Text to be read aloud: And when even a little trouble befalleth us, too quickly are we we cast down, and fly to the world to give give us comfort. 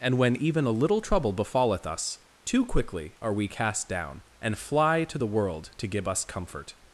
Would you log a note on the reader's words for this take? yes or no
yes